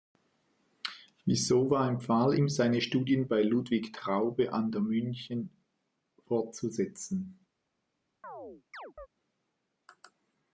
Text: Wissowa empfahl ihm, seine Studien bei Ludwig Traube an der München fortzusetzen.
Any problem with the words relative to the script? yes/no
no